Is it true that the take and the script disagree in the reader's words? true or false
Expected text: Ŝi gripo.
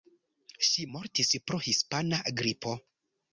true